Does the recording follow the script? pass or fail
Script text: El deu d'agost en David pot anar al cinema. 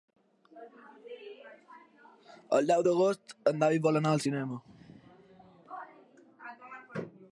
fail